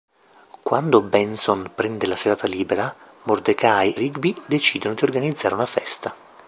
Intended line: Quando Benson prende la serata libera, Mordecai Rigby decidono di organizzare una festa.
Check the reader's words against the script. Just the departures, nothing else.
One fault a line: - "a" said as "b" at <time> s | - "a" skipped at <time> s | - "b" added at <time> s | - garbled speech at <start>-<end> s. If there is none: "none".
none